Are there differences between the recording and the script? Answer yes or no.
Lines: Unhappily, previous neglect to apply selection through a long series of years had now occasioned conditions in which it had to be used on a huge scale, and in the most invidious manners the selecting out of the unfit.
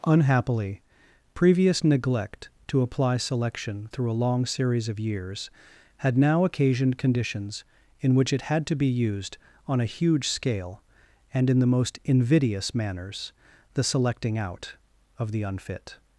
no